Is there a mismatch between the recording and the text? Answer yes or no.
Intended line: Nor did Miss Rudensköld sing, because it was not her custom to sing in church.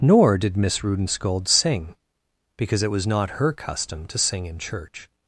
no